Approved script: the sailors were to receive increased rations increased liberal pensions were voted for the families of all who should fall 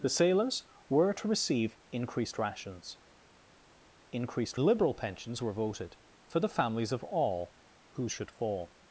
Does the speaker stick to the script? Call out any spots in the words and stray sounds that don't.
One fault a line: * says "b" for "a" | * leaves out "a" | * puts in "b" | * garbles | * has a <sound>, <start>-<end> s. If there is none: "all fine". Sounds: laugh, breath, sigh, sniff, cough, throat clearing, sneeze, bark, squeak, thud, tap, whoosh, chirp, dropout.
all fine